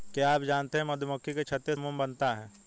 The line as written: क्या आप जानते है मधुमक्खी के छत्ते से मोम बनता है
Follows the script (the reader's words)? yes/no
no